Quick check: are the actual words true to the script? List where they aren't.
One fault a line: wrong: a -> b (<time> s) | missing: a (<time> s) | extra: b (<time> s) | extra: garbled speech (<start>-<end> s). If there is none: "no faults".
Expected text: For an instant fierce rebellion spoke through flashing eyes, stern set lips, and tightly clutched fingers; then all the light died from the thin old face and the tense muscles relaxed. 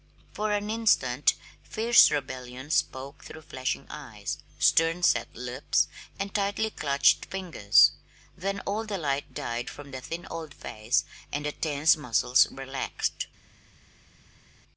no faults